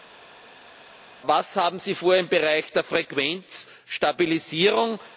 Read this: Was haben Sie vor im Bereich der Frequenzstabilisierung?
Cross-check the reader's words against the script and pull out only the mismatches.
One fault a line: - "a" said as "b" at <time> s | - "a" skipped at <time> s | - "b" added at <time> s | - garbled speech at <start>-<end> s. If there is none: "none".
none